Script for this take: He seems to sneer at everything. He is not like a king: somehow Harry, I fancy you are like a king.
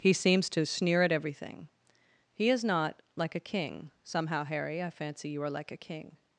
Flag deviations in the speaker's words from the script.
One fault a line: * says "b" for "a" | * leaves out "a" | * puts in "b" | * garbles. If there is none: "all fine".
all fine